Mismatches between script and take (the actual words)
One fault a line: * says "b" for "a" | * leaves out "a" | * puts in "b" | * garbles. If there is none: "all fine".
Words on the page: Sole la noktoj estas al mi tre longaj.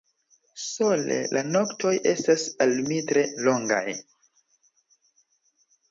all fine